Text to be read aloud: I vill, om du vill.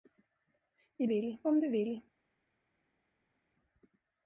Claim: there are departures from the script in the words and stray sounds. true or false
false